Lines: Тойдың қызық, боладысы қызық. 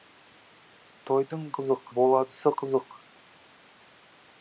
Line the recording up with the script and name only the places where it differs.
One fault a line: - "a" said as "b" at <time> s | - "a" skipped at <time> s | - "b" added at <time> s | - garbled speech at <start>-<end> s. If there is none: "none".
none